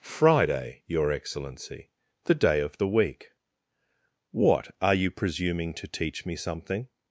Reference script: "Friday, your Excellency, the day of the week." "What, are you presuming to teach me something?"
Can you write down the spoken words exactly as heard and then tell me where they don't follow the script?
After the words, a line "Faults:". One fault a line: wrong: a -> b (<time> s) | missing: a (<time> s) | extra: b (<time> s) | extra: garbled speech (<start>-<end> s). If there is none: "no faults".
"Friday, your Excellency, the day of the week." "What, are you presuming to teach me something?"
Faults:
no faults